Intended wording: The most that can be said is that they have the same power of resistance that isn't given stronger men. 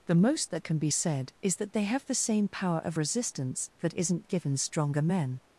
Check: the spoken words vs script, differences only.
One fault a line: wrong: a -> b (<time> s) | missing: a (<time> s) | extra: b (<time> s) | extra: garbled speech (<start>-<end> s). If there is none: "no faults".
no faults